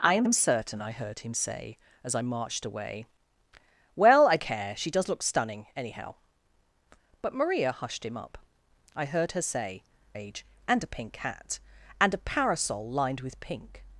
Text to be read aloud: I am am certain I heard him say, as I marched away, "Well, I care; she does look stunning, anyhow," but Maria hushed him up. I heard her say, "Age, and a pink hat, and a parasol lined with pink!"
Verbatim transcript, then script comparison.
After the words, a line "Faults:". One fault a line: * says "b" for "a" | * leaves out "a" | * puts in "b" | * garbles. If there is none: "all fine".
I am am certain I heard him say, as I marched away, "Well, I care; she does look stunning, anyhow," but Maria hushed him up. I heard her say, "Age, and a pink hat, and a parasol lined with pink!"
Faults:
all fine